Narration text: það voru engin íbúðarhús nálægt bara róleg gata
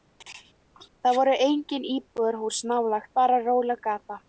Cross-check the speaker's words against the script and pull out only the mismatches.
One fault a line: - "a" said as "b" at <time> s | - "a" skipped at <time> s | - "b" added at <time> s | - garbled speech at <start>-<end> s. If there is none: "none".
none